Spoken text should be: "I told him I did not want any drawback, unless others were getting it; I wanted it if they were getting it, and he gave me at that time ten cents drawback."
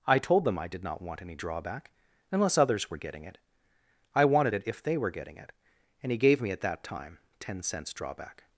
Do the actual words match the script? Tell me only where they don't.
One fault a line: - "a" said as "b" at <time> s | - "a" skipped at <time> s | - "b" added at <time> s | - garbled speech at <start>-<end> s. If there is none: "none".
- "him" said as "them" at 0.5 s